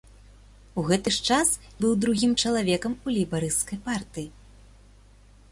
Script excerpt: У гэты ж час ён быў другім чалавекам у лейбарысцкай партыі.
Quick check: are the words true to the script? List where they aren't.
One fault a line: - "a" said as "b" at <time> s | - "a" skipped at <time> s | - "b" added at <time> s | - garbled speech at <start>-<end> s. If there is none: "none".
- "ён" skipped at 1.5 s